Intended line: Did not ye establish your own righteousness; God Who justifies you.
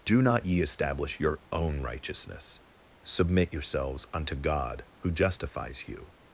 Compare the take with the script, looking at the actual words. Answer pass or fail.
fail